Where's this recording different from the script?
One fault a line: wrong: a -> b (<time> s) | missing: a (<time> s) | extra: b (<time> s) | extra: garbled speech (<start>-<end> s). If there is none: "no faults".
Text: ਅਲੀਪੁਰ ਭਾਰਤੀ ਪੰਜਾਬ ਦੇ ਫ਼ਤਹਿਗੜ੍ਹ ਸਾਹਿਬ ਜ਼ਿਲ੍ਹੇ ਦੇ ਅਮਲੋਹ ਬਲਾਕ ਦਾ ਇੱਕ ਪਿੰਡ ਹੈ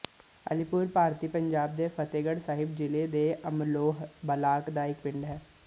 no faults